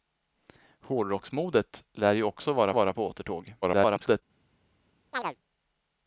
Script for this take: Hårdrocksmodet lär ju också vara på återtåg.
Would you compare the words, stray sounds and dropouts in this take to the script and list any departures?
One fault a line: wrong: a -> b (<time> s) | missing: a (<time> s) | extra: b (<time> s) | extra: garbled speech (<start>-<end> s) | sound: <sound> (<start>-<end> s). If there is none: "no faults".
extra: vara (2.7 s)
extra: garbled speech (3.6-4.2 s)
sound: chirp (5.1-5.4 s)